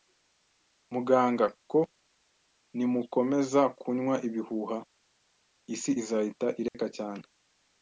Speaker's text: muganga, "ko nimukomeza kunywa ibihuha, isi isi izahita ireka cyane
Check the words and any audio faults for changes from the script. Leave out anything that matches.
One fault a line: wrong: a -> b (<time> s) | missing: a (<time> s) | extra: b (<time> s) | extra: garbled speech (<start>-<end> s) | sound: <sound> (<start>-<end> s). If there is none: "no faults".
missing: isi (5.9 s)
sound: dropout (6.7-6.7 s)